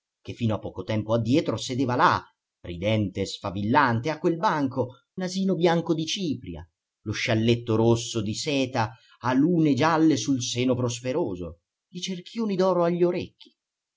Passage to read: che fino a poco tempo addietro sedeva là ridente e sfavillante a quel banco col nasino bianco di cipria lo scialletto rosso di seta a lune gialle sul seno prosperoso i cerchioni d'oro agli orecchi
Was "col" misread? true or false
true